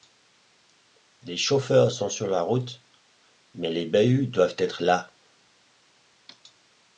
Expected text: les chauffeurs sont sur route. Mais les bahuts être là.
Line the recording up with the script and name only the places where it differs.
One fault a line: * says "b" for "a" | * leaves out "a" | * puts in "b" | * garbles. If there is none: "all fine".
* puts in "la"
* puts in "doivent"